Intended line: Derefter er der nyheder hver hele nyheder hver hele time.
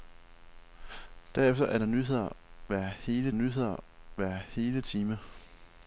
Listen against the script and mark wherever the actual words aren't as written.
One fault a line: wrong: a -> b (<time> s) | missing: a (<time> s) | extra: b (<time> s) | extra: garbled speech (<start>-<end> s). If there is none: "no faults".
no faults